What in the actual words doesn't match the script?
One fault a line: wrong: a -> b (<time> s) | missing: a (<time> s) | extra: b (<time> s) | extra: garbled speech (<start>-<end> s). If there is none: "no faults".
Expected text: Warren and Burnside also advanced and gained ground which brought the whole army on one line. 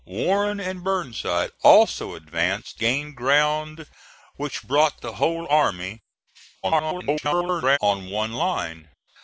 missing: and (2.8 s)
extra: garbled speech (6.6-7.8 s)